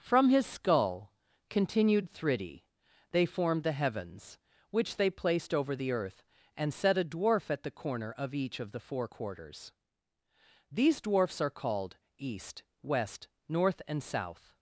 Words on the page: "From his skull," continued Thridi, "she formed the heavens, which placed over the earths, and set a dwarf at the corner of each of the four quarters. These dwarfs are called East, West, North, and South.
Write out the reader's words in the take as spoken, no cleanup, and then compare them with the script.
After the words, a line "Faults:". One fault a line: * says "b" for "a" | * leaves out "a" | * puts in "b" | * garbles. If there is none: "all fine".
"From his skull," continued Thridi, "they formed the heavens, which they placed over the earth, and set a dwarf at the corner of each of the four quarters. These dwarfs are called East, West, North, and South.
Faults:
* says "they" for "she"
* puts in "they"
* says "earth" for "earths"